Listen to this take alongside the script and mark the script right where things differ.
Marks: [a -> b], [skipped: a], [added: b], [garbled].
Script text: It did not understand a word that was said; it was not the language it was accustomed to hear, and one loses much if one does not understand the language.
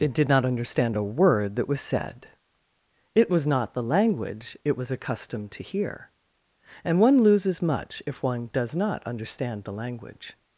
It did not understand a word that was said; it was not the language it was accustomed to hear, and one loses much if one does not understand the language.